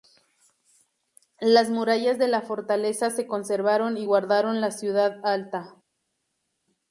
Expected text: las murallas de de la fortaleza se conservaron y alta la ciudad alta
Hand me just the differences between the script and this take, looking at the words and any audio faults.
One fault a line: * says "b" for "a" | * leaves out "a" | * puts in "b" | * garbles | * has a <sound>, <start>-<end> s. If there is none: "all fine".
* leaves out "de"
* says "guardaron" for "alta"